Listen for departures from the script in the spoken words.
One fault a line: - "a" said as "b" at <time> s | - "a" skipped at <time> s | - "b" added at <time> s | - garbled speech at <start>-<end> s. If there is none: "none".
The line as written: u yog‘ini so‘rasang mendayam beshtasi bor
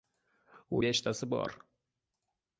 - "yog‘ini so‘rasang mendayam" skipped at 0.8 s